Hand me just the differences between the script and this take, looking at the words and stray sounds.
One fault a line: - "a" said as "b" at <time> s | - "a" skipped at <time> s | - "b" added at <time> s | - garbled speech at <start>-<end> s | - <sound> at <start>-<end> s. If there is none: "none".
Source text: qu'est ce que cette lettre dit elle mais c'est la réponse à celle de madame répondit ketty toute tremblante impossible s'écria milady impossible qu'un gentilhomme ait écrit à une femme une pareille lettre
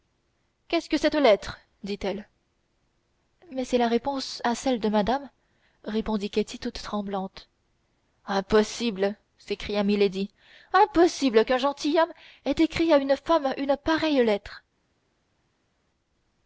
none